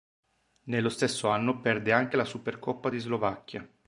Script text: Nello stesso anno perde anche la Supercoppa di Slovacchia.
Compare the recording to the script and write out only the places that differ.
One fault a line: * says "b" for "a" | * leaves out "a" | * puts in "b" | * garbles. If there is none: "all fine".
all fine